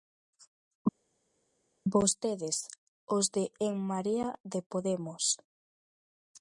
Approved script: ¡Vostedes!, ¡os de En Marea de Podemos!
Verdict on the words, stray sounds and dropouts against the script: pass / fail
pass